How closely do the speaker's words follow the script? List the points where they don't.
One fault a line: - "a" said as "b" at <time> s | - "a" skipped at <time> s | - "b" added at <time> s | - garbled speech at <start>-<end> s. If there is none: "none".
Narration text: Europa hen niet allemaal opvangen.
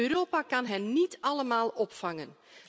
- "kan" added at 0.4 s